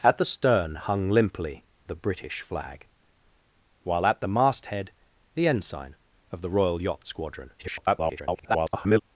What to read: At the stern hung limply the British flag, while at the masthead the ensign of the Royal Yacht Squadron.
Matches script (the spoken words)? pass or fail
fail